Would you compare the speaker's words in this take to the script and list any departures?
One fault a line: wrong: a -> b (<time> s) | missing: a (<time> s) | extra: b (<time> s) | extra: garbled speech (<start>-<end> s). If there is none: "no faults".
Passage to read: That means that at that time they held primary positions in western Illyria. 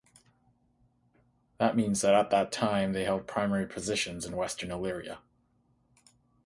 no faults